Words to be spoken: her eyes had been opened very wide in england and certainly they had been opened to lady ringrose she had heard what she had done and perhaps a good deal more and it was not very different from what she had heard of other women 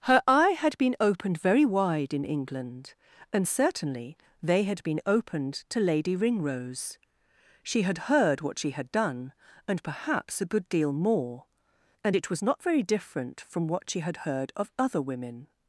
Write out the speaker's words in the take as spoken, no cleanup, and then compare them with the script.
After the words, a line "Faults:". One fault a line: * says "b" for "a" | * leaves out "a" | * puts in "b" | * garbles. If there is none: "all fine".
her eye had been opened very wide in england and certainly they had been opened to lady ringrose she had heard what she had done and perhaps a good deal more and it was not very different from what she had heard of other women
Faults:
* says "eye" for "eyes"